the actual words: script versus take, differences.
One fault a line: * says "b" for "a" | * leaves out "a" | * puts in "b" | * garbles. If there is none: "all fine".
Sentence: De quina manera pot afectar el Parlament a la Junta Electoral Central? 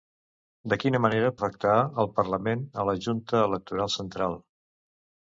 * leaves out "pot"